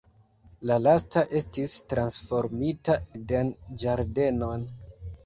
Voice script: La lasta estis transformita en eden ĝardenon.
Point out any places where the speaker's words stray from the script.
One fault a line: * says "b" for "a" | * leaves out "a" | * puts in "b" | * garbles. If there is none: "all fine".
* leaves out "en"